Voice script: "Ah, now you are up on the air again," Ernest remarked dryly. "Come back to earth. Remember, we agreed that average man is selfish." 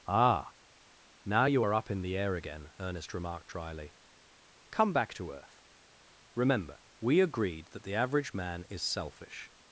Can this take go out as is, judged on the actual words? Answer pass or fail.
fail